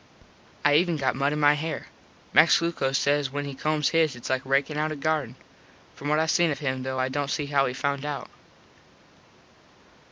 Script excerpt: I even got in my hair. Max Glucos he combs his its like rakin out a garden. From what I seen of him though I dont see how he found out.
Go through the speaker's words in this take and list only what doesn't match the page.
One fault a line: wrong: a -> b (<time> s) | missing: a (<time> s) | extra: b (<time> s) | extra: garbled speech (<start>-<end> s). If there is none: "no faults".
extra: mud (1.1 s)
extra: says when (3.0 s)